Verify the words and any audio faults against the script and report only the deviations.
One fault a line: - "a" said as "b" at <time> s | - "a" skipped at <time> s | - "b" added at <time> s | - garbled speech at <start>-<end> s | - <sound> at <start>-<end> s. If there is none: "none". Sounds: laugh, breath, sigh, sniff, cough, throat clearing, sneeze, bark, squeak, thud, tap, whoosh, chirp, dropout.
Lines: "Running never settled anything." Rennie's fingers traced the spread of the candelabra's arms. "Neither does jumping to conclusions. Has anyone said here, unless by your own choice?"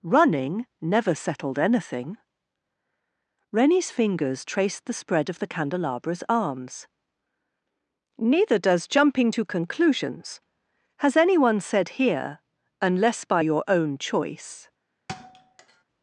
- thud at 15.1-15.8 s